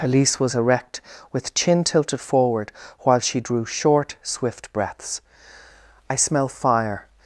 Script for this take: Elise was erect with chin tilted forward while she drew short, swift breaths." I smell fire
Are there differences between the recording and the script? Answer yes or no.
no